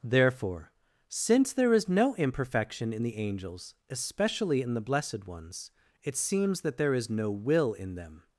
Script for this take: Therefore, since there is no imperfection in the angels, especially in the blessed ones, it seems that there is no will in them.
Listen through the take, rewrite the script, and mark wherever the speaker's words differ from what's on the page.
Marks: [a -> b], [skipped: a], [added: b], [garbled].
Therefore, since there is no imperfection in the angels, especially in the blessed ones, it seems that there is no will in them.